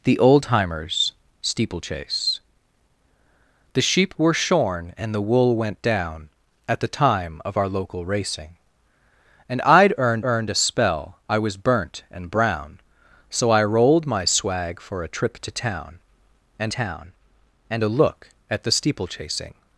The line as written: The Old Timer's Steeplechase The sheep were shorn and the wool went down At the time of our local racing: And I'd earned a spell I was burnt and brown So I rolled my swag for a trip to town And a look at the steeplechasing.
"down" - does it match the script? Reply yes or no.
yes